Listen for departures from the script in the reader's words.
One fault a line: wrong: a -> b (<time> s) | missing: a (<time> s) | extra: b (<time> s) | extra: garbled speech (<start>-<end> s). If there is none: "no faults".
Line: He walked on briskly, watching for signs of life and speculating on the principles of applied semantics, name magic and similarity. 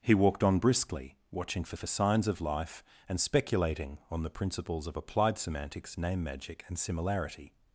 extra: for (1.7 s)